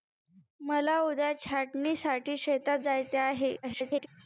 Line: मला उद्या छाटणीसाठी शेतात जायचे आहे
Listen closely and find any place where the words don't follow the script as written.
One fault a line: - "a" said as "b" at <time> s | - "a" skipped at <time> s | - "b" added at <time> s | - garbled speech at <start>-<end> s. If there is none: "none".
- garbled speech at 3.6-4.1 s